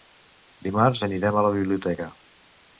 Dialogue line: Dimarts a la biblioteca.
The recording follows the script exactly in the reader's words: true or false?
false